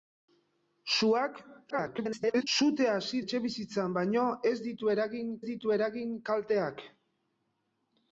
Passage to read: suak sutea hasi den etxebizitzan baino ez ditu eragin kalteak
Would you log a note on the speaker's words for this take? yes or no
yes